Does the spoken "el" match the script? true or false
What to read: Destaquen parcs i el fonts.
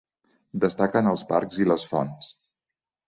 false